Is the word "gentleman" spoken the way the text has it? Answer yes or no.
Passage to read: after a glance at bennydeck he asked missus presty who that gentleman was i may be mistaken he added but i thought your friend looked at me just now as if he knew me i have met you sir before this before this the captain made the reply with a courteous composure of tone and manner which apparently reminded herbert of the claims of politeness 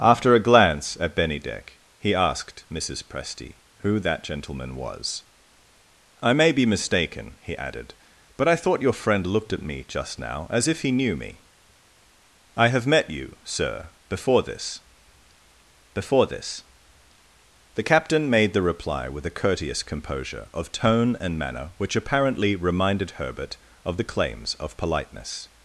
yes